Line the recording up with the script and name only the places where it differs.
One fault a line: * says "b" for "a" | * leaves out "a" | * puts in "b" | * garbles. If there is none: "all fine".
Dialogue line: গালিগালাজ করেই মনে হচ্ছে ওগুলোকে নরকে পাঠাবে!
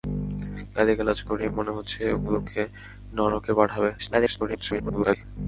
* garbles